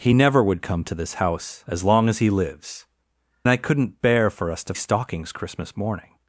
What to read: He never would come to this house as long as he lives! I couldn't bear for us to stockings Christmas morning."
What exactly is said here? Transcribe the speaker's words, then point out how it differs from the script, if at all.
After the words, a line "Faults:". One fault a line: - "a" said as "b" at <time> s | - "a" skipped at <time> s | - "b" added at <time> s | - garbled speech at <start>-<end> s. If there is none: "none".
He never would come to this house as long as he lives! I couldn't bear for us to stockings Christmas morning."
Faults:
none